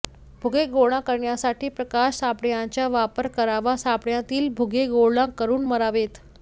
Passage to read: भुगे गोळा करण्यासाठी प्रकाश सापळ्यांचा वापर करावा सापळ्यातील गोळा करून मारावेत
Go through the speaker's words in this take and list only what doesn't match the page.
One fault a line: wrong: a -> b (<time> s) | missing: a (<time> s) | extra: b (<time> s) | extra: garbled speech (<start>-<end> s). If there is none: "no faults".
extra: भुगे (4.6 s)